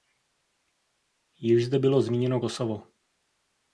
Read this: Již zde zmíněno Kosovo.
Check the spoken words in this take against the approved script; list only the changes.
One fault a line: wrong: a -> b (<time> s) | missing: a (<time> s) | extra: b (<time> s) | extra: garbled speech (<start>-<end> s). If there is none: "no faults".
extra: bylo (1.8 s)